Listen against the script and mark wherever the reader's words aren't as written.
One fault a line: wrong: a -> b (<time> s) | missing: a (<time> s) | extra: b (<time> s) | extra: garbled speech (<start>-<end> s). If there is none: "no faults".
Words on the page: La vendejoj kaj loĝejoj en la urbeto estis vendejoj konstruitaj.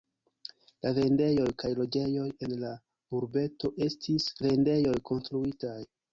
no faults